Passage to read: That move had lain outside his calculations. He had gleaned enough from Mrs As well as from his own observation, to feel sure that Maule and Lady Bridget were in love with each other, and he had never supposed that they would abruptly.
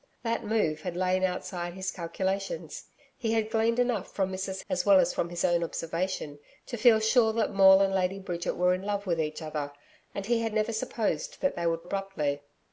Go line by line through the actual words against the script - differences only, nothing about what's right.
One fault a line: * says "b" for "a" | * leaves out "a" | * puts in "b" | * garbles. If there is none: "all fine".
all fine